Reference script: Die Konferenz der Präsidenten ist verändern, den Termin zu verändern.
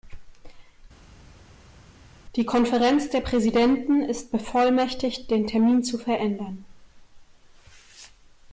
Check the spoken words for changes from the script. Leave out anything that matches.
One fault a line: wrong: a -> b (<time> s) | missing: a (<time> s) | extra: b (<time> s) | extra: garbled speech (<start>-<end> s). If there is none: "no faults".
wrong: verändern -> bevollmächtigt (4.3 s)